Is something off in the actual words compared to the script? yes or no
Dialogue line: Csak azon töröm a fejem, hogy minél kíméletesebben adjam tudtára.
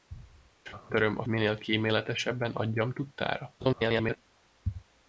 yes